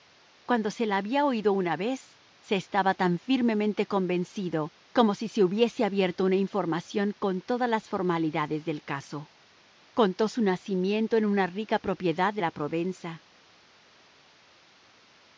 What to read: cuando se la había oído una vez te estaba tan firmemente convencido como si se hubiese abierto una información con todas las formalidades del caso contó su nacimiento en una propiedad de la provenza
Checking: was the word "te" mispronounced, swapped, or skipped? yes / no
yes